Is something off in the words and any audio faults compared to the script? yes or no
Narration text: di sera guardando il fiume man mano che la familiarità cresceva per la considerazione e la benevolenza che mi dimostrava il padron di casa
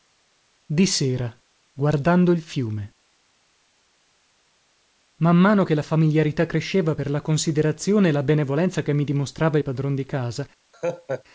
yes